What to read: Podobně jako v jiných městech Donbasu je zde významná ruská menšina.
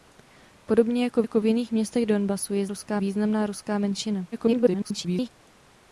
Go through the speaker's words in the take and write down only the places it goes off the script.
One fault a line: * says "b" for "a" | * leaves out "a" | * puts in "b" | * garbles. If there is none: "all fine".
* puts in "jako"
* says "ruská" for "zde"
* garbles